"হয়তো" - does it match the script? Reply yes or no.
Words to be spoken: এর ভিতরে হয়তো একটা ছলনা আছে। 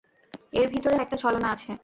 no